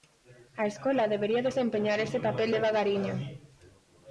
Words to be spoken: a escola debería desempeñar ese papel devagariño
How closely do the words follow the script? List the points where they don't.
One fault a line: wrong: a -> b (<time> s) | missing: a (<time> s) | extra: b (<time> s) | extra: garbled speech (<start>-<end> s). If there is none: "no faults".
no faults